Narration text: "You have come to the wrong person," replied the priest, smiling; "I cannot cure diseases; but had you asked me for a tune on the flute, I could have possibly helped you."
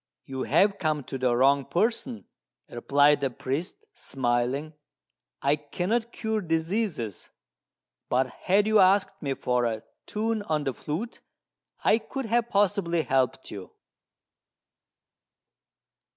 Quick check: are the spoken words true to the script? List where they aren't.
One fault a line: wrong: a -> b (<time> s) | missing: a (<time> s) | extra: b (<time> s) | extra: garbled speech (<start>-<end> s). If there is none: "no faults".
no faults